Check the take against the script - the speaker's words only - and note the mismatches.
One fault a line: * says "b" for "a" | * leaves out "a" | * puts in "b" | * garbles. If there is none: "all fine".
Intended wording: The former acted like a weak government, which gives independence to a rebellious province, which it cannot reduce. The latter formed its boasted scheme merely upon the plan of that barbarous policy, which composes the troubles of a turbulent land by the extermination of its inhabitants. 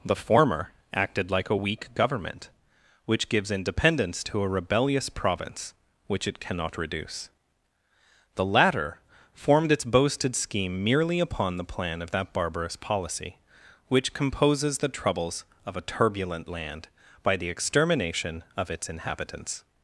all fine